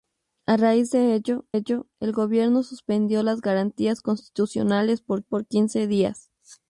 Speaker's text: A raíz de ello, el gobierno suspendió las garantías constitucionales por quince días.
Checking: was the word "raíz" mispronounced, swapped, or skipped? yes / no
no